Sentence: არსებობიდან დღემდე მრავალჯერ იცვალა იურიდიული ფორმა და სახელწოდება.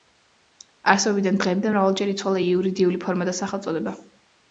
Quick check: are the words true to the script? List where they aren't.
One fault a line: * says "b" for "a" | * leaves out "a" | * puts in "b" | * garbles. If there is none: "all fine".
all fine